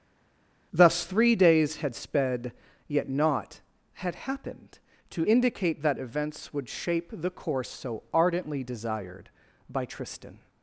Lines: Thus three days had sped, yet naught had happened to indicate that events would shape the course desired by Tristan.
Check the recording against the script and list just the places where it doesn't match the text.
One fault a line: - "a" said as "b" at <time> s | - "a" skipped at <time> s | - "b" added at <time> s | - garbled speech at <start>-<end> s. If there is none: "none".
- "so ardently" added at 7.7 s